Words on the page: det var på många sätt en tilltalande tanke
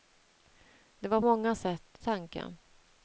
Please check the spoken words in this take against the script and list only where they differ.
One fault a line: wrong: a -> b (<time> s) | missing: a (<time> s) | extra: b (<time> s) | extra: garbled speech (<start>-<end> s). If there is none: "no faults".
missing: på (1.2 s)
missing: en tilltalande (2.0 s)